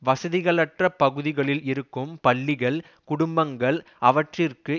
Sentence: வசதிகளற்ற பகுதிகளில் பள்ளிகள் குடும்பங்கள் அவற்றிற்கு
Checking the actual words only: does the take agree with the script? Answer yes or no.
no